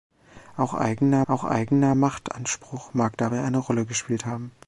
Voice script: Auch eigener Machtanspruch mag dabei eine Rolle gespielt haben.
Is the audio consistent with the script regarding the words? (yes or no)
no